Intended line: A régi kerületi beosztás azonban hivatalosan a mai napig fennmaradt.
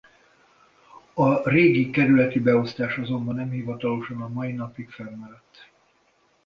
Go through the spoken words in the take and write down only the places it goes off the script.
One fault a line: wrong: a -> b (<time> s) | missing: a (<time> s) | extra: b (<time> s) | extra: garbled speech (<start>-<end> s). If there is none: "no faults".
extra: nem (3.3 s)